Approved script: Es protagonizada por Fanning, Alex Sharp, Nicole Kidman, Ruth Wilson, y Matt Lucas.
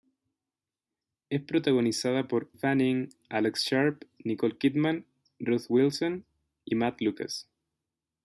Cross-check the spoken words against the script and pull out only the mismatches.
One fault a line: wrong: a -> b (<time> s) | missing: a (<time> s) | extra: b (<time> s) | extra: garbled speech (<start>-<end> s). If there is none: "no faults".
no faults